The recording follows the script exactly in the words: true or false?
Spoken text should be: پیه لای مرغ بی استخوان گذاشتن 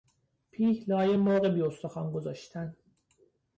true